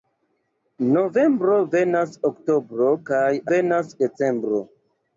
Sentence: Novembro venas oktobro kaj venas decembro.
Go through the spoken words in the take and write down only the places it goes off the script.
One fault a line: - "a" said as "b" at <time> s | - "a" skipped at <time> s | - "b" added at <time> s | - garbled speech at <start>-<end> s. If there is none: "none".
none